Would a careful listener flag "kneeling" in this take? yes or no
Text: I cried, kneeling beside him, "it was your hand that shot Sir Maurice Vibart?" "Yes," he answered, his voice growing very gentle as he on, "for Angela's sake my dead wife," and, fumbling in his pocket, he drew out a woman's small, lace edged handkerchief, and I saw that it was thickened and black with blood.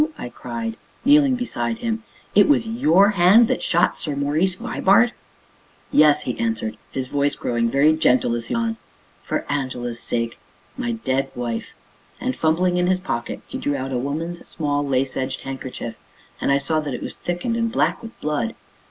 no